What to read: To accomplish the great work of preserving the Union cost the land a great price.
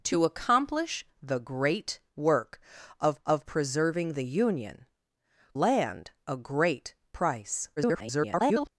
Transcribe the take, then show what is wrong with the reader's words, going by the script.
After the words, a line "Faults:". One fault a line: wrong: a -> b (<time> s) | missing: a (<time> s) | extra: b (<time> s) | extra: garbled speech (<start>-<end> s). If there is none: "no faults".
To accomplish the great work of of preserving the Union land a great price. [garbled]
Faults:
extra: of (3.2 s)
missing: cost the (4.9 s)
extra: garbled speech (7.8-8.7 s)